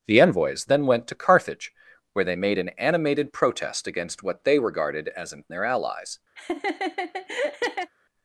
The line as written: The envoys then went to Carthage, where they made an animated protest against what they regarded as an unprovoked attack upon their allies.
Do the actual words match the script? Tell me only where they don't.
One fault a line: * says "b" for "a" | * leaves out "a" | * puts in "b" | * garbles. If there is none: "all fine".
* leaves out "unprovoked attack upon"